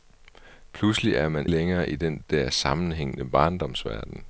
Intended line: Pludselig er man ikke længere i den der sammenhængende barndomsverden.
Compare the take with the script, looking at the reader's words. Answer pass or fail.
fail